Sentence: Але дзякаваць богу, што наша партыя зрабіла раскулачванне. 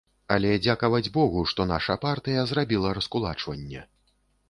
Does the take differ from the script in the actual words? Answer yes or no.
no